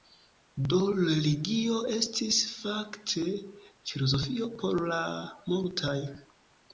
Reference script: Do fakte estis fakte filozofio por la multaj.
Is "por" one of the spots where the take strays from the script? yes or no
no